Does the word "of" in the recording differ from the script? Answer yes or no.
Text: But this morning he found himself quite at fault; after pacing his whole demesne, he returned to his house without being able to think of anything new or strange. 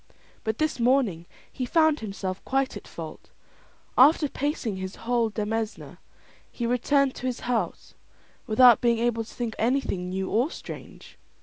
yes